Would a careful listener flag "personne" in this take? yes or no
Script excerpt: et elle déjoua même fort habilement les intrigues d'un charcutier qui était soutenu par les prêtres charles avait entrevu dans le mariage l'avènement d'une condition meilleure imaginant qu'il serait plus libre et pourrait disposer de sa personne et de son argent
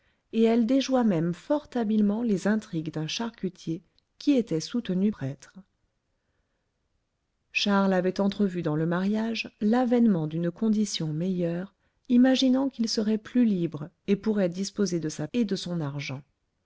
yes